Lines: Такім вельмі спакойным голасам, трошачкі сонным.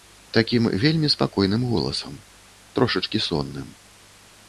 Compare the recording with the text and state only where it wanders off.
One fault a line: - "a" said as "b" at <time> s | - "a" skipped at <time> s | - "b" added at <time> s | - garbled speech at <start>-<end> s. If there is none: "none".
none